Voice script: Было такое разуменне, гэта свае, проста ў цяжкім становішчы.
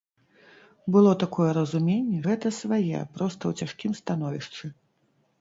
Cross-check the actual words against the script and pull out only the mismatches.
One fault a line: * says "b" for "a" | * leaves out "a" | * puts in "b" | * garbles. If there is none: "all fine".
all fine